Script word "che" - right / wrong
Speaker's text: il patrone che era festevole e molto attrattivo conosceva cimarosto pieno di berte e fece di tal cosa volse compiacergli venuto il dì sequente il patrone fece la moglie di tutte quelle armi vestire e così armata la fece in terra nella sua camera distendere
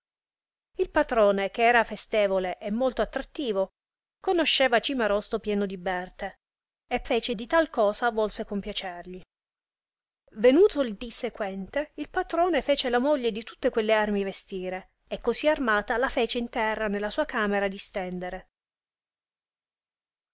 right